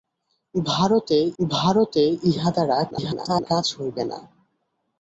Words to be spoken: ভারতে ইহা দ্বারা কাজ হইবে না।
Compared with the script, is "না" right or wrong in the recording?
right